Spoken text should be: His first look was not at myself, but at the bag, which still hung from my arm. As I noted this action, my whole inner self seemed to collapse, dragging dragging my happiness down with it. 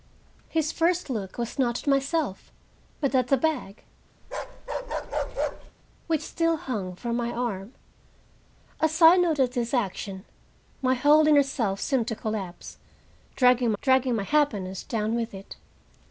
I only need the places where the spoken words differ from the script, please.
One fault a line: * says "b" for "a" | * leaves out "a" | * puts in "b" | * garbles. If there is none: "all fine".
all fine